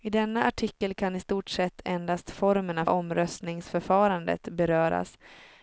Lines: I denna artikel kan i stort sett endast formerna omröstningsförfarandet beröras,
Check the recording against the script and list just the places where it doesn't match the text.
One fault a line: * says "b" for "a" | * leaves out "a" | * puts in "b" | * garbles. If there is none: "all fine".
all fine